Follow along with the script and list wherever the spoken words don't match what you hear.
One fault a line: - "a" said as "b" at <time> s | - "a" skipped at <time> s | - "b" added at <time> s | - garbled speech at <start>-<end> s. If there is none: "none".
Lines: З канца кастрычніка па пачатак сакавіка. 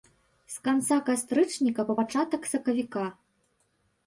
none